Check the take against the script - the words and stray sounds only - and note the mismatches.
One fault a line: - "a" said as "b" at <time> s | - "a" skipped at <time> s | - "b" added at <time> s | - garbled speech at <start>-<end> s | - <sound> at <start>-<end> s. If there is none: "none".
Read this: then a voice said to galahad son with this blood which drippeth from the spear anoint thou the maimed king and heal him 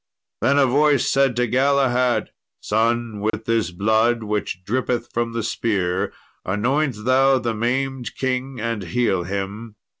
- dropout at 3.3-3.3 s